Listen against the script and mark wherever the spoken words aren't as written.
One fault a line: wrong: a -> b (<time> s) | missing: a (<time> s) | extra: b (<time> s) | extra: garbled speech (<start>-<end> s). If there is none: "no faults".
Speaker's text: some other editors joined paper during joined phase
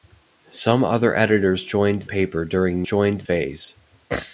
no faults